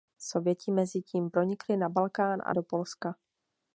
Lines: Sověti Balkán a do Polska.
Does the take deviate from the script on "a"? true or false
false